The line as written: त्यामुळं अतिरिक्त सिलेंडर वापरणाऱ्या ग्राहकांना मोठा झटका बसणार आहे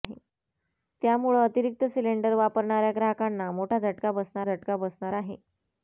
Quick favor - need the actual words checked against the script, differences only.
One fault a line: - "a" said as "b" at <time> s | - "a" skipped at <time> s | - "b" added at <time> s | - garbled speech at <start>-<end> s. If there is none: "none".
- "झटका बसणार" added at 4.4 s